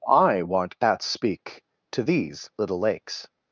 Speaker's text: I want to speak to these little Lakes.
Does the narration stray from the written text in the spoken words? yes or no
yes